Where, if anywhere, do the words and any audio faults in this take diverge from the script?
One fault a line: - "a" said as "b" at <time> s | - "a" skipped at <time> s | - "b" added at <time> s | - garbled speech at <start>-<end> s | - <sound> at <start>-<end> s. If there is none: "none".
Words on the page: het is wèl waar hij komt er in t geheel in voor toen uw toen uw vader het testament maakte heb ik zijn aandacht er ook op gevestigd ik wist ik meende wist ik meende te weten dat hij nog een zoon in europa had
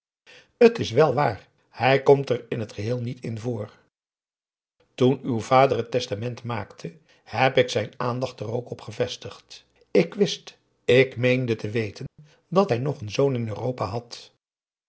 - "niet" added at 3.0 s
- "toen uw" skipped at 5.4 s
- "wist ik meende" skipped at 11.6 s
- dropout at 12.1-12.2 s